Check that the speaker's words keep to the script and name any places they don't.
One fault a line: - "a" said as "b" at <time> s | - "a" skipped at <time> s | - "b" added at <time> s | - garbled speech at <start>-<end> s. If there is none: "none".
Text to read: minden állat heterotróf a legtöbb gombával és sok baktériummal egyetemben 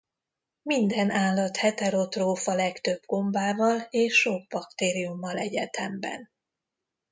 none